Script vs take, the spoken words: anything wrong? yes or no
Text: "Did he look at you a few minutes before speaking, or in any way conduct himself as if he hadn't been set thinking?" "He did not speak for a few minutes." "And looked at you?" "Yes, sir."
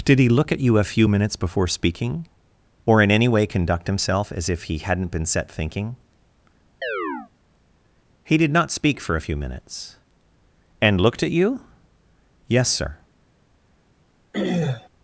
no